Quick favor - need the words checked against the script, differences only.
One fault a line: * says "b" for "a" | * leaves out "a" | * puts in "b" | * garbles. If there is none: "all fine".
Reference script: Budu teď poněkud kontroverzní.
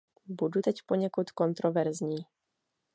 all fine